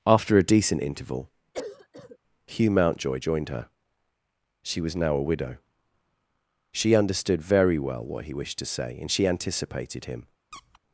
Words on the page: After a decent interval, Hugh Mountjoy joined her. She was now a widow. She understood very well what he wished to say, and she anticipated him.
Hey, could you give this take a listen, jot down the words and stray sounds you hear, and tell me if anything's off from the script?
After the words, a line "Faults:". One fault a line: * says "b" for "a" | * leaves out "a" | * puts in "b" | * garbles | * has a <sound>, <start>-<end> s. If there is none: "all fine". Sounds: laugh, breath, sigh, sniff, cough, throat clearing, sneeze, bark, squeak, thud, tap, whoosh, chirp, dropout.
After a decent interval, Hugh Mountjoy joined her. She was now a widow. She understood very well what he wished to say, and she anticipated him.
Faults:
* has a cough, 1.5-2.2 s
* has a squeak, 10.5-10.8 s